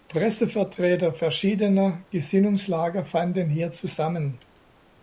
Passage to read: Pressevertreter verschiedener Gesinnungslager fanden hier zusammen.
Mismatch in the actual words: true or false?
false